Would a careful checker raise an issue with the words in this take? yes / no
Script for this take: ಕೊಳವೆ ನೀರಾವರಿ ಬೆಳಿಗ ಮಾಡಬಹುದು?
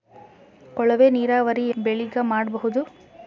no